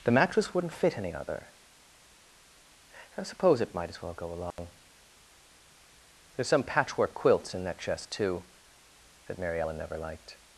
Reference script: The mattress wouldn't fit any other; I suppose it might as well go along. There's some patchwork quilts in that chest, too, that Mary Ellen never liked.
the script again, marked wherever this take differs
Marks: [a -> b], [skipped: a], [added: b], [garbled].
The mattress wouldn't fit any other; I suppose it might as well go along. There's some patchwork quilts in that chest, too, that Mary Ellen never liked.